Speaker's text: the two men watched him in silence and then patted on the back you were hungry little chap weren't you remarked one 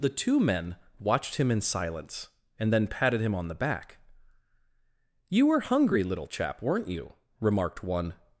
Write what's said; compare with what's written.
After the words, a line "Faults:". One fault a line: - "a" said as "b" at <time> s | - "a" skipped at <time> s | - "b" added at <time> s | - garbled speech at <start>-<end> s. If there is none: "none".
the two men watched him in silence and then patted him on the back you were hungry little chap weren't you remarked one
Faults:
- "him" added at 3.2 s